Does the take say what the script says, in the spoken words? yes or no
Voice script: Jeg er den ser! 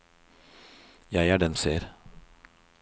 yes